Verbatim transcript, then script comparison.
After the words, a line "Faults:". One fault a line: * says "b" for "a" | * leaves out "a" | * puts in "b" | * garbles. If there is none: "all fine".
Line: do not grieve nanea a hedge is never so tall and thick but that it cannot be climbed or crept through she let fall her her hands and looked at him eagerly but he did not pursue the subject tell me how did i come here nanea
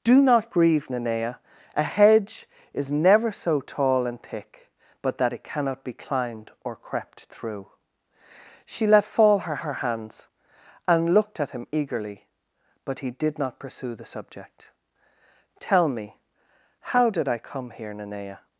do not grieve nanea a hedge is never so tall and thick but that it cannot be climbed or crept through she let fall her her hands and looked at him eagerly but he did not pursue the subject tell me how did i come here nanea
Faults:
all fine